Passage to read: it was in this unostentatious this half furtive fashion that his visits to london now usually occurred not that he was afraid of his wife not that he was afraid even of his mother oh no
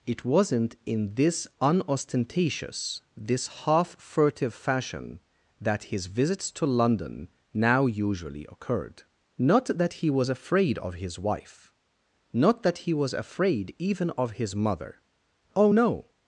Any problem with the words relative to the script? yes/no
yes